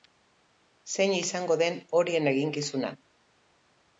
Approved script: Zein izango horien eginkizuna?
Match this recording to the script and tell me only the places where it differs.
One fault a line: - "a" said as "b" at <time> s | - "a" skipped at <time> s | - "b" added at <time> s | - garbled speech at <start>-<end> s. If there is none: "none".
- "den" added at 1.6 s